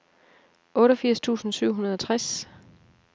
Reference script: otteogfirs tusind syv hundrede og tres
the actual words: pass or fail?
pass